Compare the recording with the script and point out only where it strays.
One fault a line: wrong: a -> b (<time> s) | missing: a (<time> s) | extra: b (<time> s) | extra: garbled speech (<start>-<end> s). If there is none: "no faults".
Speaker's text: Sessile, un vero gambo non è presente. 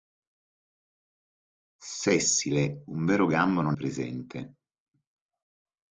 missing: è (3.8 s)